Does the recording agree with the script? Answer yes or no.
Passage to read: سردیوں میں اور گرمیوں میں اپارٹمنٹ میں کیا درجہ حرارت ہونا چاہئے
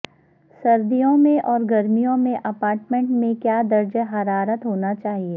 yes